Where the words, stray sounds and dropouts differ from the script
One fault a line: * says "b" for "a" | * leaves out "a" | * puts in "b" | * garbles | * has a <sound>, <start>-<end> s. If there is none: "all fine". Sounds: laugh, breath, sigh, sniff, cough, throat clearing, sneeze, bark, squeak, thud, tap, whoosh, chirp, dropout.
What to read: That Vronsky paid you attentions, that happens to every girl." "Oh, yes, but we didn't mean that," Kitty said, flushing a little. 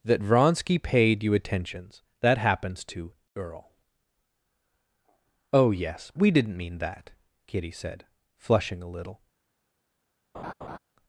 * leaves out "every"
* leaves out "but"
* has a laugh, 10.3-10.8 s